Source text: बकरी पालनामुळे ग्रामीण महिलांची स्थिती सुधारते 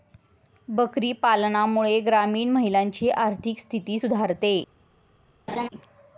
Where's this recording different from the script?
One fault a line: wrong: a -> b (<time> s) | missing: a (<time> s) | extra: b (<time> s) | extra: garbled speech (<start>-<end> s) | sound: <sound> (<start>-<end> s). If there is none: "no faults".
extra: आर्थिक (3.1 s)
sound: laugh (5.5-5.7 s)